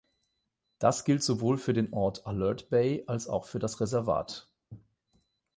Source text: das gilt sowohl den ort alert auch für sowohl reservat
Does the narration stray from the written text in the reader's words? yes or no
yes